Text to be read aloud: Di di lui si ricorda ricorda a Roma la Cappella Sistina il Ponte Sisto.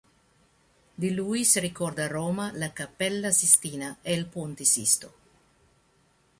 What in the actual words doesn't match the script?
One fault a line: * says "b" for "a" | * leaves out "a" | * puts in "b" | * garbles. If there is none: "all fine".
* leaves out "di"
* leaves out "ricorda"
* puts in "e"